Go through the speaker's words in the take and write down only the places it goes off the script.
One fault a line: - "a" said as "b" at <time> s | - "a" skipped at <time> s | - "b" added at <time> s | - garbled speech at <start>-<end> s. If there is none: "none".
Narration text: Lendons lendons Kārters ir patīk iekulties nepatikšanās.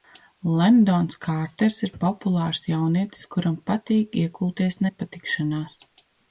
- "lendons" skipped at 1.2 s
- "populārs jaunietis kuram" added at 2.0 s